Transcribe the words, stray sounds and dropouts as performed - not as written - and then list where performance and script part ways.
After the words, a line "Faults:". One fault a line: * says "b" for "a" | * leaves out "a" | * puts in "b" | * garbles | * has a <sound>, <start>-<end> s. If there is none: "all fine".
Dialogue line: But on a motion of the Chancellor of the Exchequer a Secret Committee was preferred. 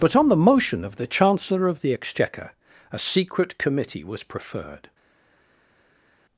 But on the motion of the Chancellor of the Exchequer a Secret Committee was preferred.
Faults:
* says "the" for "a"